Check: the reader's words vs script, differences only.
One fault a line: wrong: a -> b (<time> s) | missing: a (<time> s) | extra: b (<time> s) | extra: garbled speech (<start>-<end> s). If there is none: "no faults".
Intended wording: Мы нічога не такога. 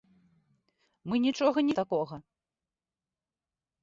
no faults